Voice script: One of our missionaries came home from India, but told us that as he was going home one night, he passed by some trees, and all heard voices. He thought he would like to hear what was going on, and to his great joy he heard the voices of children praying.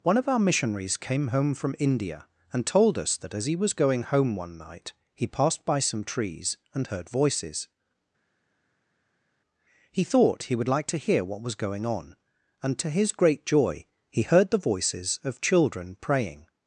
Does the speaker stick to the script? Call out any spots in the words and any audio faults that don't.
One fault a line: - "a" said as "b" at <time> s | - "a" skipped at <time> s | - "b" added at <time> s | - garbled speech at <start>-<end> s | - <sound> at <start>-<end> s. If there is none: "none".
- "but" said as "and" at 2.5 s
- "all" skipped at 6.9 s